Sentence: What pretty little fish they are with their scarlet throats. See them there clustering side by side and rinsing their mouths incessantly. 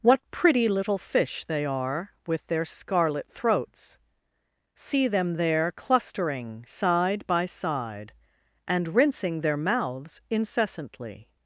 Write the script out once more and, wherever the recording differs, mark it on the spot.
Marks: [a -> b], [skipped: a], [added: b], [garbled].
What pretty little fish they are with their scarlet throats. See them there clustering side by side and rinsing their mouths incessantly.